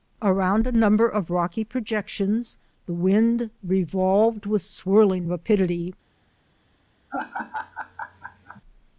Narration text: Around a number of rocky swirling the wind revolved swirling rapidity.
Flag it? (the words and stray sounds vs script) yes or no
yes